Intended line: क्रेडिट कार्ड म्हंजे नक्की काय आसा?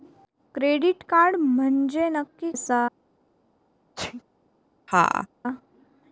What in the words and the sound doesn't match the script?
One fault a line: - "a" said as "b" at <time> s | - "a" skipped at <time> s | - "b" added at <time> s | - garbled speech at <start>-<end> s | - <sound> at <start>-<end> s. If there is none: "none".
- "काय" skipped at 2.5 s
- sneeze at 4.0-4.2 s
- laugh at 4.9-5.3 s